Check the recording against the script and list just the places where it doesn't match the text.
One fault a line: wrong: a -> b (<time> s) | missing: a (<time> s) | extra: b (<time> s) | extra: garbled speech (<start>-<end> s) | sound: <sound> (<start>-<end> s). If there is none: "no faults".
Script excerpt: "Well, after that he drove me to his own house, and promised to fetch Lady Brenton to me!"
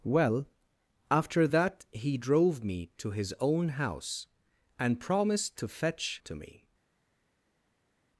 missing: Lady Brenton (6.2 s)